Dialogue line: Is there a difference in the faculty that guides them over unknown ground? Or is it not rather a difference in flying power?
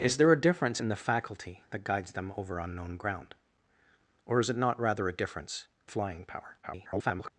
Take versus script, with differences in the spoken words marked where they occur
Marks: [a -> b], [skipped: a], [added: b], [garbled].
Is there a difference in the faculty that guides them over unknown ground? Or is it not rather a difference [skipped: in] flying power? [garbled]